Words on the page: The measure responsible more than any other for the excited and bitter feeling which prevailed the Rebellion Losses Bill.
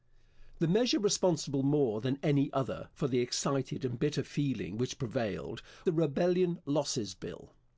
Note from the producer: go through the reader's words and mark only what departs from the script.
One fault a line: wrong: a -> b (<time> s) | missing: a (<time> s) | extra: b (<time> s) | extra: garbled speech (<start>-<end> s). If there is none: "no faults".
no faults